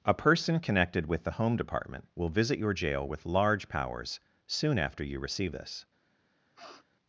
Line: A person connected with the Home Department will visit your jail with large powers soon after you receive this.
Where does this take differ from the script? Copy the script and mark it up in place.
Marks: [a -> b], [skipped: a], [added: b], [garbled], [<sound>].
A person connected with the Home Department will visit your jail with large powers soon after you receive this. [sniff]